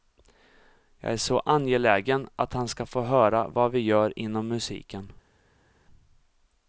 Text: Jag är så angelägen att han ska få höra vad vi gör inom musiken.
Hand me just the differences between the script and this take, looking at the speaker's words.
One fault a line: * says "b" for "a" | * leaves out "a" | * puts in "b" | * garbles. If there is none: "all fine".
all fine